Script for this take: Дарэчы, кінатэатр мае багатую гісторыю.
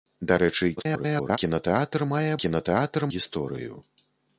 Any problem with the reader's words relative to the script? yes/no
yes